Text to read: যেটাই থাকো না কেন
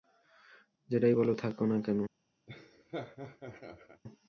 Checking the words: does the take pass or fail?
fail